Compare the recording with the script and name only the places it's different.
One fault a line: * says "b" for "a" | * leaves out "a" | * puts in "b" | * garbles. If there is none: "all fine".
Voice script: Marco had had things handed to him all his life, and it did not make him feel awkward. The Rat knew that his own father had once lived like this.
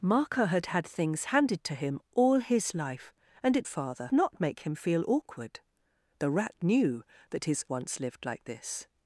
* says "father" for "did"
* leaves out "own father had"